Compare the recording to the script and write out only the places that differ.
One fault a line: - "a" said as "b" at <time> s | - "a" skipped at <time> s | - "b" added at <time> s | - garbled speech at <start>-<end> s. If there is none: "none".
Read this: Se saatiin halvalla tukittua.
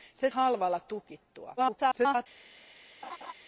- "saatiin" skipped at 0.3 s
- garbled speech at 1.6-2.3 s